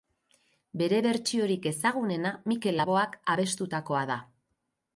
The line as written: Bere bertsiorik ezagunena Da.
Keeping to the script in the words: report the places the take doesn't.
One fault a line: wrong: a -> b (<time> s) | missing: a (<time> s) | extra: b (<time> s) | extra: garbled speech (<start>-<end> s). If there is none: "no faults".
extra: Mikel Laboak abestutakoa (2.5 s)